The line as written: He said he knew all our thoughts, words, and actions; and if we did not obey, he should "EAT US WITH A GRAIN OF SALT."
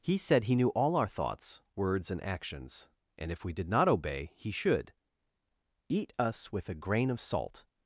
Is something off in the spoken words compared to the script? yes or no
no